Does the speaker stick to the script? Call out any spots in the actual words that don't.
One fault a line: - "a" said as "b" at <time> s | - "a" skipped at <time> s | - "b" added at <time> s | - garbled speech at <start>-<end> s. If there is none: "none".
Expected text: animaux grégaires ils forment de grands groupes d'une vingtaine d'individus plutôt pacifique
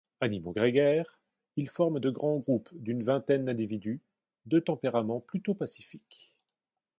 - "de tempérament" added at 4.5 s